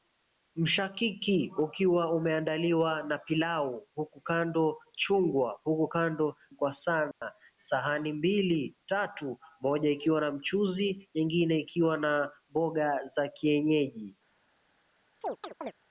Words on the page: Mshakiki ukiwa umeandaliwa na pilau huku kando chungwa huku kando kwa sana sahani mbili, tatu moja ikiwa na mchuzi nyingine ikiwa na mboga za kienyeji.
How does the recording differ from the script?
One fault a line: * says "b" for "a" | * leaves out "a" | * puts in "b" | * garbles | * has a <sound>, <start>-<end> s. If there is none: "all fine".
* has a dropout, 7.1-7.2 s
* has a chirp, 15.2-15.7 s